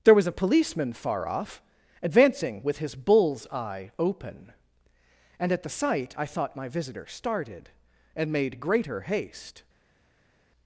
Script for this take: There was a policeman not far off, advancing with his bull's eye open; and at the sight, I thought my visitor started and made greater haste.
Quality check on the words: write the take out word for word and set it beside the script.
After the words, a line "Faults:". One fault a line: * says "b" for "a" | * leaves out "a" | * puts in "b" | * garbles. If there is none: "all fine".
There was a policeman far off, advancing with his bull's eye open; and at the sight, I thought my visitor started and made greater haste.
Faults:
* leaves out "not"